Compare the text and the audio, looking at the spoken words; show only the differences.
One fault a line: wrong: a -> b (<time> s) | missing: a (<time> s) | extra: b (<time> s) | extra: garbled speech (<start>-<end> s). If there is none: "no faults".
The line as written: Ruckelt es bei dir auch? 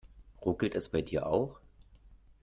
no faults